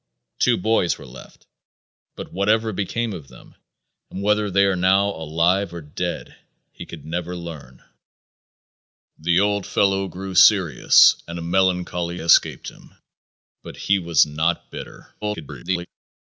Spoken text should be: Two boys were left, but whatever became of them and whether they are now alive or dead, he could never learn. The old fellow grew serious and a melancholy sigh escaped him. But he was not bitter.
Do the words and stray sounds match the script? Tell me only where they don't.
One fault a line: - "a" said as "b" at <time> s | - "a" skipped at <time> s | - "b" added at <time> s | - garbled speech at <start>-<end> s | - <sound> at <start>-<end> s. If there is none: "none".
- "sigh" skipped at 12.2 s
- garbled speech at 15.2-15.9 s